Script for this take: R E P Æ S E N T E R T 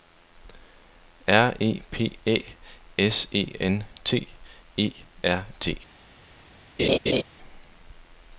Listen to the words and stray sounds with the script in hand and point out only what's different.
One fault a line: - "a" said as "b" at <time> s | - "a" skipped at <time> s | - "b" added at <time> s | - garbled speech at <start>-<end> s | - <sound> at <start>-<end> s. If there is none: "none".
- laugh at 6.8-7.2 s